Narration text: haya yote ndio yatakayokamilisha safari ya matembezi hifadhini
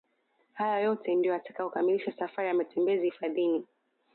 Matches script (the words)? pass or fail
pass